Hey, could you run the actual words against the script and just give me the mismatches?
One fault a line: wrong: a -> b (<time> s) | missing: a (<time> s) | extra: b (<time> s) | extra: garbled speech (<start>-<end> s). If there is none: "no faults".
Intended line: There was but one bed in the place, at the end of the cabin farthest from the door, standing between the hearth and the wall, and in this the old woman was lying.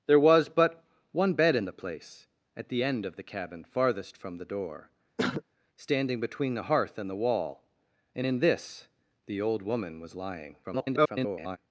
extra: garbled speech (10.6-11.6 s)